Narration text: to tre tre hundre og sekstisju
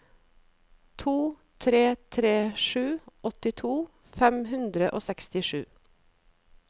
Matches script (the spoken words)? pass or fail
fail